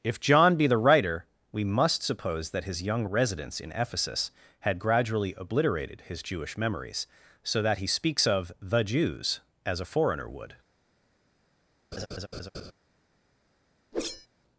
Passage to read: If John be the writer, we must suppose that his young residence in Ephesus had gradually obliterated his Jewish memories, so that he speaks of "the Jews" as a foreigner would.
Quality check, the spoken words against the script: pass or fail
pass